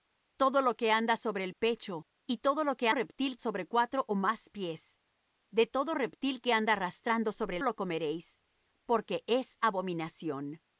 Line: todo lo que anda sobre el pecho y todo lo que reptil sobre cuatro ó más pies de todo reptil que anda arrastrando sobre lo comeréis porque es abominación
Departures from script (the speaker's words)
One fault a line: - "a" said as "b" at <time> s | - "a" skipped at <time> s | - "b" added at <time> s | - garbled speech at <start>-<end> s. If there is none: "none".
none